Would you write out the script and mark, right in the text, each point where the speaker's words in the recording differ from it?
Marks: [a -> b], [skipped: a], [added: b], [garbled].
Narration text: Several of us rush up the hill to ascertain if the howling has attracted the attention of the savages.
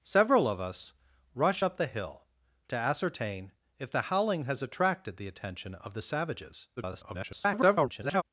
Several of us rush up the hill to ascertain if the howling has attracted the attention of the savages. [garbled]